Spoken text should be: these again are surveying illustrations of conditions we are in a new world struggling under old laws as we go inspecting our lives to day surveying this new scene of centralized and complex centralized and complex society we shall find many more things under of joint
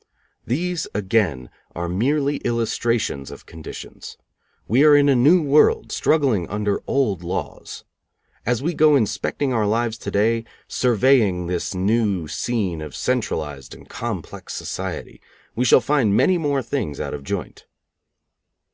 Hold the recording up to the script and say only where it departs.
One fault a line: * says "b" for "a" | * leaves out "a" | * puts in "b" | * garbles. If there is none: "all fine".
* says "merely" for "surveying"
* leaves out "centralized and complex"
* says "out" for "under"